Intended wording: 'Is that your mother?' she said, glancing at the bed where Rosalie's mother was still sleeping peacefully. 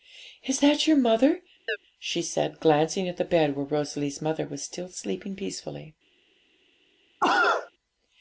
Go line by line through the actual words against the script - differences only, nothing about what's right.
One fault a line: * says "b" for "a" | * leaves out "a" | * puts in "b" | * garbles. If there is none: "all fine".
all fine